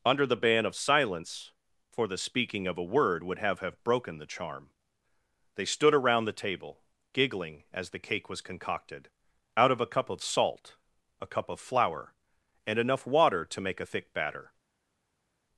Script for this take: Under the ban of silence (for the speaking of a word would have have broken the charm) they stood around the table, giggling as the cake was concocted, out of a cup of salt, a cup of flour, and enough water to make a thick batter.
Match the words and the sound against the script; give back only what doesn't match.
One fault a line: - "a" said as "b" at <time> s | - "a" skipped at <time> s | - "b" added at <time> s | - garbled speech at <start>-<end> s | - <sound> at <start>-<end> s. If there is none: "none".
none